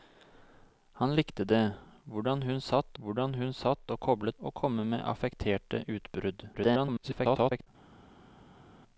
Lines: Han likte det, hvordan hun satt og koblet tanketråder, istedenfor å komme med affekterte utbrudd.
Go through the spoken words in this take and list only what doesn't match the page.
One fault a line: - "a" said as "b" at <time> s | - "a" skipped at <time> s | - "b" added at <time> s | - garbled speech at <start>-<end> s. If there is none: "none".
- "hvordan hun satt" added at 3.0 s
- "tanketråder istedenfor" skipped at 4.4 s
- garbled speech at 6.5-7.7 s